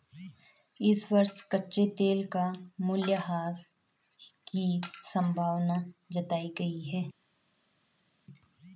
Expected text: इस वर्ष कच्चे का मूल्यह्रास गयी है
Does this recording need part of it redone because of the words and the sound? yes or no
yes